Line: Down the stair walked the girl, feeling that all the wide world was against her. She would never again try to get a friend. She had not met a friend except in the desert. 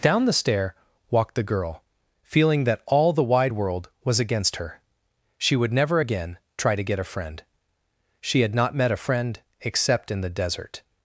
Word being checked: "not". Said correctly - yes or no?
yes